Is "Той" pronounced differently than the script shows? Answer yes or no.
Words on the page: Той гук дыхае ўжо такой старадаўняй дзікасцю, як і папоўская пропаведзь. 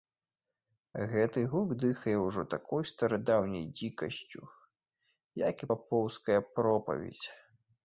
yes